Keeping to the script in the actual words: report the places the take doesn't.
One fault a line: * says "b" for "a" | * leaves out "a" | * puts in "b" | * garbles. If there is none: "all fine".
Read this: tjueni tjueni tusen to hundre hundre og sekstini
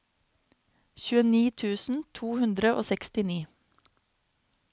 * leaves out "tjueni"
* leaves out "hundre"